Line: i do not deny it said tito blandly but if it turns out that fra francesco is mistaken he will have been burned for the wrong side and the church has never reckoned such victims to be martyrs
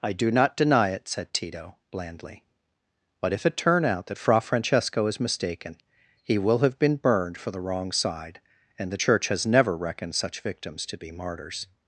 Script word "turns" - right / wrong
wrong